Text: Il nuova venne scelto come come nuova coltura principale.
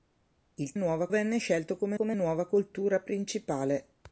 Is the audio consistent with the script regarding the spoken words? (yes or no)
yes